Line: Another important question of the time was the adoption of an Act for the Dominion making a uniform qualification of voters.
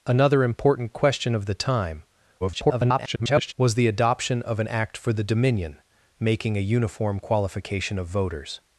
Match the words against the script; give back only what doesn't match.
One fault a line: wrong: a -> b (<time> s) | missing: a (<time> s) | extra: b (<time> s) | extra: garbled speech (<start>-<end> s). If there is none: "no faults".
extra: garbled speech (2.4-3.5 s)